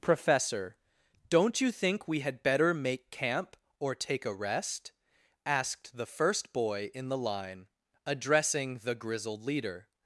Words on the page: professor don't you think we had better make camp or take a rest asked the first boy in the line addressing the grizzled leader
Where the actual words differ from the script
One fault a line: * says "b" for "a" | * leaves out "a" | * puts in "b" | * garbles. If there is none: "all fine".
all fine